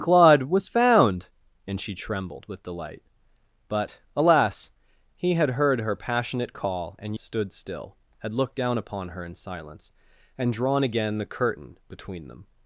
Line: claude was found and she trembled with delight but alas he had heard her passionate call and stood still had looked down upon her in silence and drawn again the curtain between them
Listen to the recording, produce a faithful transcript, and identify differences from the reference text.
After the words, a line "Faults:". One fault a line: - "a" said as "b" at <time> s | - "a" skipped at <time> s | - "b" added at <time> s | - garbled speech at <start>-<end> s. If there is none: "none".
claude was found and she trembled with delight but alas he had heard her passionate call and stood still had looked down upon her in silence and drawn again the curtain between them
Faults:
none